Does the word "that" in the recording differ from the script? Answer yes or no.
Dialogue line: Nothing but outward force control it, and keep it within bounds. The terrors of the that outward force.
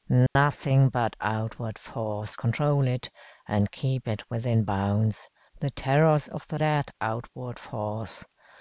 no